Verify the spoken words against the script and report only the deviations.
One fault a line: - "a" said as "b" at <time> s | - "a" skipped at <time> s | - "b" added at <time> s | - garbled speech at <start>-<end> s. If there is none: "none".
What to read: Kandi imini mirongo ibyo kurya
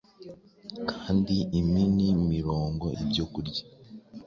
none